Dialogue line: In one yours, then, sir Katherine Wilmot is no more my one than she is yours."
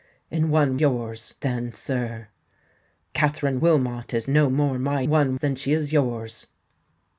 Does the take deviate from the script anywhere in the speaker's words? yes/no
no